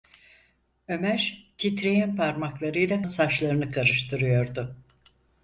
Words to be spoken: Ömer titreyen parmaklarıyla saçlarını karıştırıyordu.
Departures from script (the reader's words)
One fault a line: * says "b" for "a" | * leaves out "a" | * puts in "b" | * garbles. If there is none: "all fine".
all fine